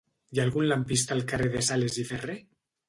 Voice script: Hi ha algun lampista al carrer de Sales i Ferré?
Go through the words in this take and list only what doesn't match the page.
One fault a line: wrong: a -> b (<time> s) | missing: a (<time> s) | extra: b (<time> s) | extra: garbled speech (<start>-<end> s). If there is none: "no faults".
no faults